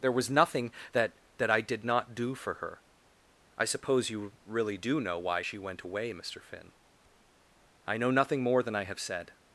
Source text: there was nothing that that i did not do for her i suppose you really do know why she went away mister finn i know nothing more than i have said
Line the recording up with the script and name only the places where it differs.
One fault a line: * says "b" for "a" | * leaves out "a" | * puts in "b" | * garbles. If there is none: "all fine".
all fine